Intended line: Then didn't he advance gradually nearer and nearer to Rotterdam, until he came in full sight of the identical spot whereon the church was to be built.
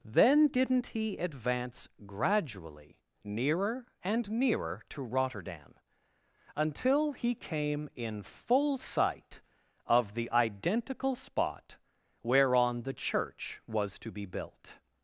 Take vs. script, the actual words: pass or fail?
pass